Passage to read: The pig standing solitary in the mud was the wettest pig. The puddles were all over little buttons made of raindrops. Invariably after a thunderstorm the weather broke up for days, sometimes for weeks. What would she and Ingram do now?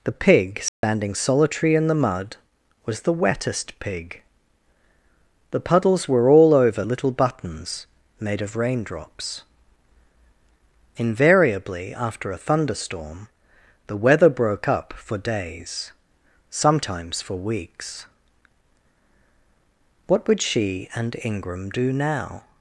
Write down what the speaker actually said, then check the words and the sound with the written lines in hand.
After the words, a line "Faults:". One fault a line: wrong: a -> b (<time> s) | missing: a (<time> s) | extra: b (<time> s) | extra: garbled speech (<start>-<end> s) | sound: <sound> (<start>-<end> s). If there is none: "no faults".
The pig standing solitary in the mud was the wettest pig. The puddles were all over little buttons made of raindrops. Invariably after a thunderstorm the weather broke up for days, sometimes for weeks. What would she and Ingram do now?
Faults:
sound: dropout (0.7-0.8 s)